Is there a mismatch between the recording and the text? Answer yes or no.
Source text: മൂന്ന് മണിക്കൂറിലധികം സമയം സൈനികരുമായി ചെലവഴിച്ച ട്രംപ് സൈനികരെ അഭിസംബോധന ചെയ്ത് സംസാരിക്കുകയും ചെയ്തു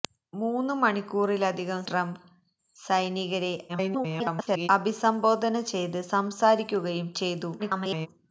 yes